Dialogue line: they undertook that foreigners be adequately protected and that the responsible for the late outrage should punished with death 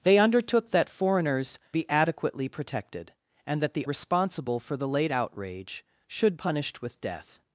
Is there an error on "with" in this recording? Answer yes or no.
no